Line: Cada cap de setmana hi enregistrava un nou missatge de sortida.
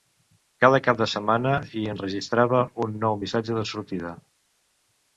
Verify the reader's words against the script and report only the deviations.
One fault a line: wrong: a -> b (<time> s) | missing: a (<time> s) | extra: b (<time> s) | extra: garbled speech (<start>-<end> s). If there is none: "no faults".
no faults